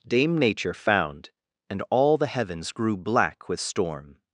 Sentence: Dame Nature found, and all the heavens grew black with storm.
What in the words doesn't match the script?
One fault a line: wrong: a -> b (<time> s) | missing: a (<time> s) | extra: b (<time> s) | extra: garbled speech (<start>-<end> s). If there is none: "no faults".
no faults